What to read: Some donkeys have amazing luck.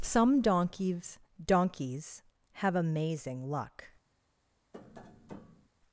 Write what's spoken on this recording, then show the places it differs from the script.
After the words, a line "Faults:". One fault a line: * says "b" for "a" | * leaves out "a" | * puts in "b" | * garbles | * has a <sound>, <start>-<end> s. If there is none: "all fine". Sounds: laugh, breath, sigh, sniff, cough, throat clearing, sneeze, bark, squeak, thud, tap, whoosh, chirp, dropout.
Some donkeys donkeys have amazing luck.
Faults:
* puts in "donkeys"
* has a tap, 4.7-5.7 s